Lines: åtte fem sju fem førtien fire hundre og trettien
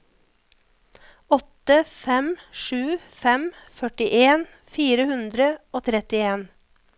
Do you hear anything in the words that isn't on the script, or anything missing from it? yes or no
no